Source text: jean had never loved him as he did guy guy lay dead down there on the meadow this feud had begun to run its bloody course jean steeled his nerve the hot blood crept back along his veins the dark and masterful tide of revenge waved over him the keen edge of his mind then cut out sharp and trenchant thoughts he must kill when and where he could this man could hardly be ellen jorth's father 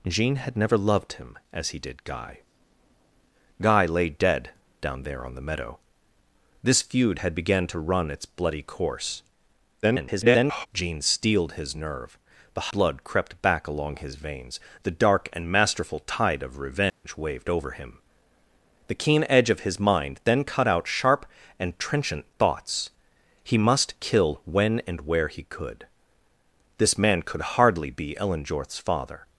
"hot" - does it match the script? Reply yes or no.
no